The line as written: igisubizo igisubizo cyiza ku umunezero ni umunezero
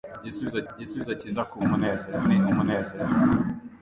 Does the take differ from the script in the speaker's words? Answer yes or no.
no